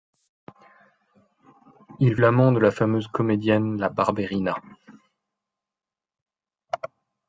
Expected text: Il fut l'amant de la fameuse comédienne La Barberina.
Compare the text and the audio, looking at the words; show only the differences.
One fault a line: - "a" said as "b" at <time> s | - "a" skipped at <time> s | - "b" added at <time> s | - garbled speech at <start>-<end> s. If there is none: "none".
- "fut" skipped at 2.2 s